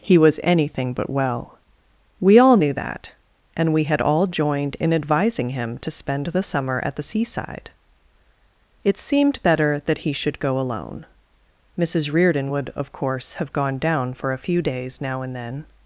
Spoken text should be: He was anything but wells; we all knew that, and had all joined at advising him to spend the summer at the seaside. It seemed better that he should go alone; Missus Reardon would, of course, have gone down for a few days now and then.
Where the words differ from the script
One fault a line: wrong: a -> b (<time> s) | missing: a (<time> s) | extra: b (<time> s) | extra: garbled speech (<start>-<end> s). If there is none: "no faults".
wrong: wells -> well (1.1 s)
extra: we (3.7 s)
wrong: at -> in (4.8 s)